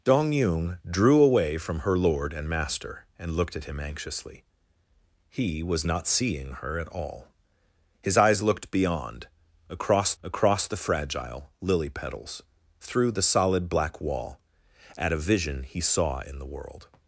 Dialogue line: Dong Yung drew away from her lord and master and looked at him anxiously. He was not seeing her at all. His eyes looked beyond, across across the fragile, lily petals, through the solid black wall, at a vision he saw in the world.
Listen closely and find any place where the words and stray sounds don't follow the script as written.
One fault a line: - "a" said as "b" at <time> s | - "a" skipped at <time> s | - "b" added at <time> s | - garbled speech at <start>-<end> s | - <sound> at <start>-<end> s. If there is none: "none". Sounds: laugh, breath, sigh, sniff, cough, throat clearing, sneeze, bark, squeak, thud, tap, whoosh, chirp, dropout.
none